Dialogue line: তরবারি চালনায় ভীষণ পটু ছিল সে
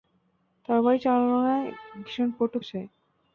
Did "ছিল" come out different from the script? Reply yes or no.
yes